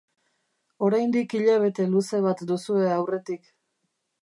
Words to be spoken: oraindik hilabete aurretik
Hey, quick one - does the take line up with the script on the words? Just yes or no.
no